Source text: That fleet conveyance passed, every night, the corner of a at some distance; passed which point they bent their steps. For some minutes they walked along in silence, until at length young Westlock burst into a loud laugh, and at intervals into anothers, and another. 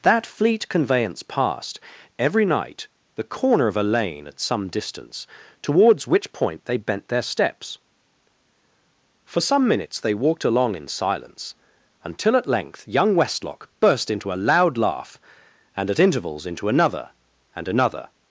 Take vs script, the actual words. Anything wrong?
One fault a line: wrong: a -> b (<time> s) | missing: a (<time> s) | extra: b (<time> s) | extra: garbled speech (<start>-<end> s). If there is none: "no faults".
extra: lane (3.8 s)
wrong: passed -> towards (5.6 s)
wrong: anothers -> another (16.7 s)